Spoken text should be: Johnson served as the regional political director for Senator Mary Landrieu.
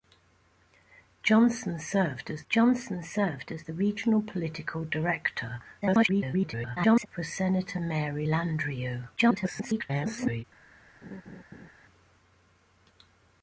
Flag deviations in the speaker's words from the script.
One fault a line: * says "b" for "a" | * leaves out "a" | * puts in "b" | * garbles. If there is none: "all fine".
* puts in "johnson served as"
* garbles
* garbles